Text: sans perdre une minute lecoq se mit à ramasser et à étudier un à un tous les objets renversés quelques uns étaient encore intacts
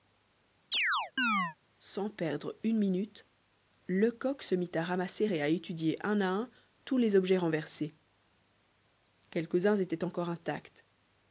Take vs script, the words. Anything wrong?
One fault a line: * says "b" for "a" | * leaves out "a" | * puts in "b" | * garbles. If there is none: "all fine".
all fine